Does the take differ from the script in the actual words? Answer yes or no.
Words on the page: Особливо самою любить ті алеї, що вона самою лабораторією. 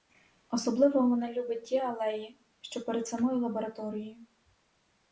yes